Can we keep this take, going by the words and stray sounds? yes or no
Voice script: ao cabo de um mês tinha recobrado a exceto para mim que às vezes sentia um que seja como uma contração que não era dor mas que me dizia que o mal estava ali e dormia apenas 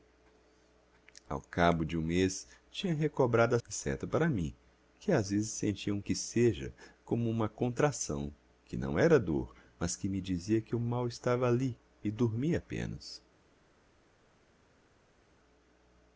yes